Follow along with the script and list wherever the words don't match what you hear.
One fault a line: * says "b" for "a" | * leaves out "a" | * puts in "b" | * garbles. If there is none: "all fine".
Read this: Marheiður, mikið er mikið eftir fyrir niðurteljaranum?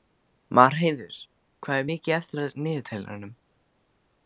* says "hvað" for "mikið"
* says "af" for "fyrir"